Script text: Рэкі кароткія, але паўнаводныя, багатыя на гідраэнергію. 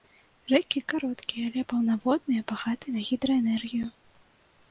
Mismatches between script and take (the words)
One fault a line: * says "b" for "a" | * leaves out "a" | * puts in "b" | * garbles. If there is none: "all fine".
all fine